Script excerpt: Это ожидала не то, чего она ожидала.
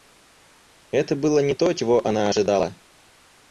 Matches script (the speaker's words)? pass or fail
fail